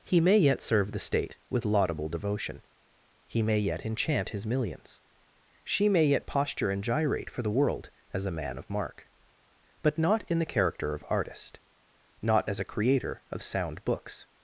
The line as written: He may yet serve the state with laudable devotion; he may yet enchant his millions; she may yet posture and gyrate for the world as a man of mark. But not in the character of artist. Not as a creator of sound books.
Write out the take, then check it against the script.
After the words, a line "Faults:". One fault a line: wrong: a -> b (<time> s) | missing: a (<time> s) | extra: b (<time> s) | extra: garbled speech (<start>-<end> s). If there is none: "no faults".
He may yet serve the state with laudable devotion; he may yet enchant his millions; she may yet posture and gyrate for the world as a man of mark. But not in the character of artist. Not as a creator of sound books.
Faults:
no faults